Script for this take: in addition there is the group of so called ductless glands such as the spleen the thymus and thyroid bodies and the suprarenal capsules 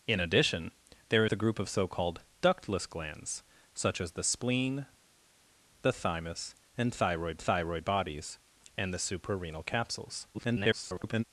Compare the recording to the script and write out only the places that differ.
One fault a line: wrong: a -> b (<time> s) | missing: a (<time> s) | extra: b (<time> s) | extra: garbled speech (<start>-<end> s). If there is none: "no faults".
missing: is (1.2 s)
extra: thyroid (7.4 s)
extra: garbled speech (10.3-11.2 s)